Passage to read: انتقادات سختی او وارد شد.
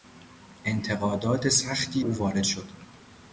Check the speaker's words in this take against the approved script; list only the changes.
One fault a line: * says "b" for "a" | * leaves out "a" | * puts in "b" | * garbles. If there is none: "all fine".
all fine